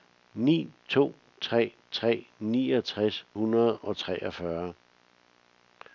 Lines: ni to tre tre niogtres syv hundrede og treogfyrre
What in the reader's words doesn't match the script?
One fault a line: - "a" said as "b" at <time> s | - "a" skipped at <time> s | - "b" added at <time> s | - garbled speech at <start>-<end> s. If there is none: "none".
- "syv" skipped at 3.2 s